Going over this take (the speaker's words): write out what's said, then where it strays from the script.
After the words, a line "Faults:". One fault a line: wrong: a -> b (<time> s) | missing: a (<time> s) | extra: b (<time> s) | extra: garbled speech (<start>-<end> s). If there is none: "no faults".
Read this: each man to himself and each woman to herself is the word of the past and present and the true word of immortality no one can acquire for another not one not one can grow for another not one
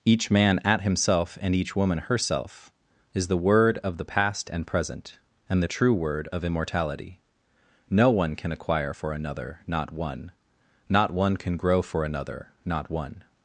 each man at himself and each woman herself is the word of the past and present and the true word of immortality no one can acquire for another not one not one can grow for another not one
Faults:
wrong: to -> at (0.6 s)
missing: to (2.0 s)